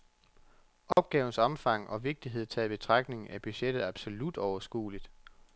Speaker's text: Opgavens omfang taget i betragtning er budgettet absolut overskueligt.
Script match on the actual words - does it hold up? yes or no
no